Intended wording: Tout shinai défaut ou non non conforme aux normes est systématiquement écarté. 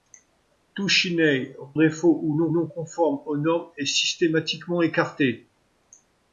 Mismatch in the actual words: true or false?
false